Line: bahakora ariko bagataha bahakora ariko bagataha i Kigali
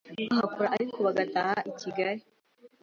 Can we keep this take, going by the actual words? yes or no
no